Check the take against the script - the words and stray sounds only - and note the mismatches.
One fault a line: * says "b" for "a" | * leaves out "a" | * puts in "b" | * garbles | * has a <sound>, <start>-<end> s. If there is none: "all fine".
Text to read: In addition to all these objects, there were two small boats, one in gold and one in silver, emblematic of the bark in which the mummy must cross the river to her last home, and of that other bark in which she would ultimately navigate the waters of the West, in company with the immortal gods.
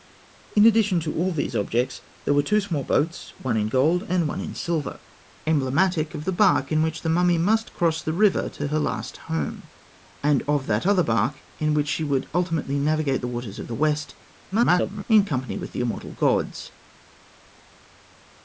* garbles